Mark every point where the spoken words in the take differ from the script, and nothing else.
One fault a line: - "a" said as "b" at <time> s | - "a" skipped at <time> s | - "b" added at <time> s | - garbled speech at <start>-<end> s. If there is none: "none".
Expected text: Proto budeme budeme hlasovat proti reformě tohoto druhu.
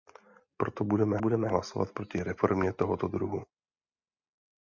none